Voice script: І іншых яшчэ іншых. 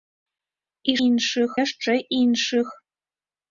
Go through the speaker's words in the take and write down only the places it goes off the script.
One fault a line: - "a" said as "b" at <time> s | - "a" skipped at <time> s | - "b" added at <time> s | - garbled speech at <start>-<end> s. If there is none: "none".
none